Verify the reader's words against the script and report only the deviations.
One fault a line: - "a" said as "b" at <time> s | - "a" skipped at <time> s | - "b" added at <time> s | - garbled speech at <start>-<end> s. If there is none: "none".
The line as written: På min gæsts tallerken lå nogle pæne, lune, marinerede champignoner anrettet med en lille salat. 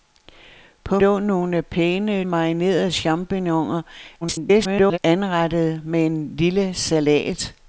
- "min gæsts tallerken" skipped at 1.0 s
- "lune" skipped at 2.2 s
- garbled speech at 4.2-5.0 s